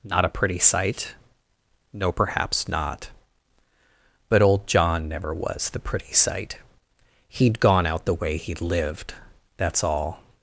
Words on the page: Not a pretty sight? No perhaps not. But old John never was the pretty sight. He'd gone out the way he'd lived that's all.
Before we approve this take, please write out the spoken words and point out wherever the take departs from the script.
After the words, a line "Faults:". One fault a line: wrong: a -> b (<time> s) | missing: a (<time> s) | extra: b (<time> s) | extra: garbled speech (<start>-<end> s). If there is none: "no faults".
Not a pretty sight? No perhaps not. But old John never was the pretty sight. He'd gone out the way he'd lived that's all.
Faults:
no faults